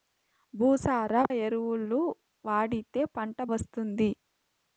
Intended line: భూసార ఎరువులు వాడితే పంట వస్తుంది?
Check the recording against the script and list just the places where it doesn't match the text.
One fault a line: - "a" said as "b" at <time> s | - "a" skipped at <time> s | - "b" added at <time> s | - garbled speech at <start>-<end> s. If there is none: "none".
none